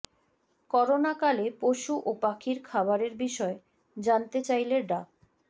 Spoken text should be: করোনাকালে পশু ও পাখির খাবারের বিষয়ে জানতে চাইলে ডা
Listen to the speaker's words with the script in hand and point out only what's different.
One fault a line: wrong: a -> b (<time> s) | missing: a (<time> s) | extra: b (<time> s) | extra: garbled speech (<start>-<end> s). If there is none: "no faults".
no faults